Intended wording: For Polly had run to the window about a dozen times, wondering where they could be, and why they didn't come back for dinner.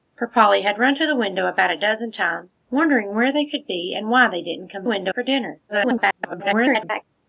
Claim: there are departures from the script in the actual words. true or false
true